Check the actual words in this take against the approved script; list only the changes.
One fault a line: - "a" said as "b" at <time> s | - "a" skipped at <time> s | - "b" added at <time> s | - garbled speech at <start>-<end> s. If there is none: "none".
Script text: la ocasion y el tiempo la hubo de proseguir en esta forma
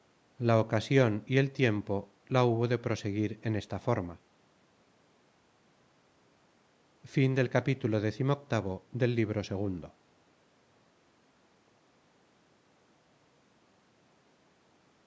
none